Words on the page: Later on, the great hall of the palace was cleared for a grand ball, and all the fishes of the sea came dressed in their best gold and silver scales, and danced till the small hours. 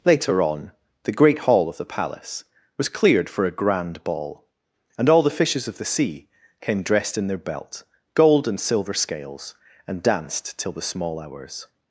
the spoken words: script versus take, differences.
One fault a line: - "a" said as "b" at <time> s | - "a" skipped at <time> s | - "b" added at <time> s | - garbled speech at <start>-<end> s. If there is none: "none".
- "best" said as "belt" at 7.4 s